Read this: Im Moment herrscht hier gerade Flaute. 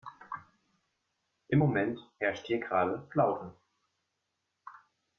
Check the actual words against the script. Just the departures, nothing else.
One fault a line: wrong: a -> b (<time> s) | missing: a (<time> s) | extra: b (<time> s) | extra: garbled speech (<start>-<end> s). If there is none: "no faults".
no faults